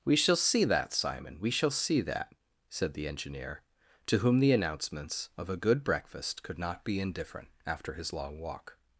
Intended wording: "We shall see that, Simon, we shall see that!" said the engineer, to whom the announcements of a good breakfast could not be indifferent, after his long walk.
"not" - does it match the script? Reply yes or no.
yes